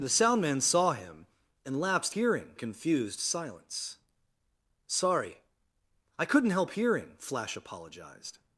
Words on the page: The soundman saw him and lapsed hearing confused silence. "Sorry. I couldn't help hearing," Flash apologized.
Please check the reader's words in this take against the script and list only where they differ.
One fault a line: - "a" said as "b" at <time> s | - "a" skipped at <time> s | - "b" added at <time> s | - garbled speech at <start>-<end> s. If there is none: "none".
none